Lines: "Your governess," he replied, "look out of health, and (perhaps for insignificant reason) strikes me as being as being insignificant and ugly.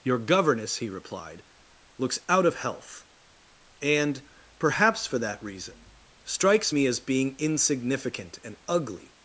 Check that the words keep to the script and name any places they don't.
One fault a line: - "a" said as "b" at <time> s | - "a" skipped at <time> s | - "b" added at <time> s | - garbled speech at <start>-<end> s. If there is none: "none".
- "look" said as "looks" at 2.0 s
- "insignificant" said as "that" at 5.2 s
- "as being" skipped at 7.3 s